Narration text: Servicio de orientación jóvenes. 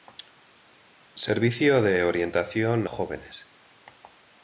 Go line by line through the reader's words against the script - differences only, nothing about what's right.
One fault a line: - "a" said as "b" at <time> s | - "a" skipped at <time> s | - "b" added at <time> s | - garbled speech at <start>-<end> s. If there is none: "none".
none